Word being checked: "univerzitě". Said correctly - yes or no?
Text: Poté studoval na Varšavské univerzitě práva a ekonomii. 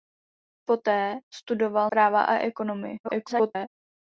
no